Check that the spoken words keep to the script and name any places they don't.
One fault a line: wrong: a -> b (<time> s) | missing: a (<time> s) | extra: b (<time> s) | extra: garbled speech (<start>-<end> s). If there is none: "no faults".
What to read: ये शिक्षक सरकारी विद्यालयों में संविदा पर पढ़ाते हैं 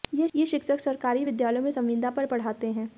no faults